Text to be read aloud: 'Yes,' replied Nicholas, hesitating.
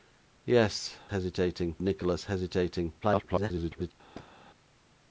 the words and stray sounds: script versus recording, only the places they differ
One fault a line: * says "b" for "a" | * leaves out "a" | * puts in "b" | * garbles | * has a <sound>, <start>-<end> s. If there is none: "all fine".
* says "hesitating" for "replied"
* garbles
* has a thud, 4.1-4.3 s